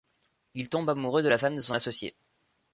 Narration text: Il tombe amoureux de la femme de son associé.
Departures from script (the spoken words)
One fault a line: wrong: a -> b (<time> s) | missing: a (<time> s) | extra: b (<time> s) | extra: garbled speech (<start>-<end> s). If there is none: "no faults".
no faults